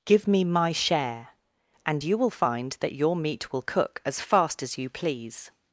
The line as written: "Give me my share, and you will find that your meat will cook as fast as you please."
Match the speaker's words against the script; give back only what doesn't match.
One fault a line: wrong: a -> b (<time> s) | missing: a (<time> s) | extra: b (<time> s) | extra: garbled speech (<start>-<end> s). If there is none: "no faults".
no faults